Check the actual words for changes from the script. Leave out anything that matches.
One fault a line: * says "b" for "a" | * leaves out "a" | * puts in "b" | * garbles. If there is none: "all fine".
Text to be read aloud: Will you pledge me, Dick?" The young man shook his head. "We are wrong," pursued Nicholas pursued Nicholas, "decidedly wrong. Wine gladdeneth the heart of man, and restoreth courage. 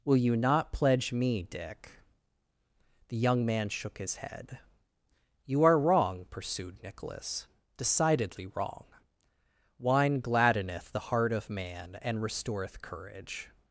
* puts in "not"
* says "You" for "We"
* leaves out "pursued Nicholas"